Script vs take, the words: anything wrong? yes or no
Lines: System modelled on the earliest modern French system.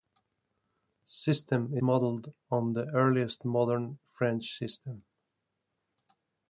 no